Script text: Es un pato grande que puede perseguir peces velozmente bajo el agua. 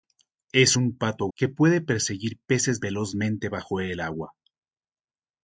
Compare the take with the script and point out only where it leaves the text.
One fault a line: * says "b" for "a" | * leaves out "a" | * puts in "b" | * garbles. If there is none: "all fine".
* leaves out "grande"